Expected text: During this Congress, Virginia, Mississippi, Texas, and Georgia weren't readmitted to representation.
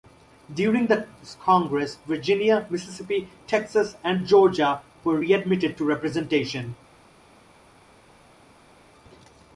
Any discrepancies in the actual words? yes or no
yes